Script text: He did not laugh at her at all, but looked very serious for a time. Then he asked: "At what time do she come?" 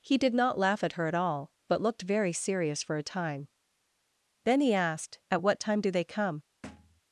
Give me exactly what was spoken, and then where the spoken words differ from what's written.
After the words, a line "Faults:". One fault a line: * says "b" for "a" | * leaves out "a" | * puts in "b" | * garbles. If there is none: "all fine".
He did not laugh at her at all, but looked very serious for a time. Then he asked: "At what time do they come?"
Faults:
* says "they" for "she"